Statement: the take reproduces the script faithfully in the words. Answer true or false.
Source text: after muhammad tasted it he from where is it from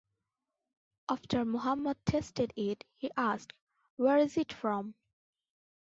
false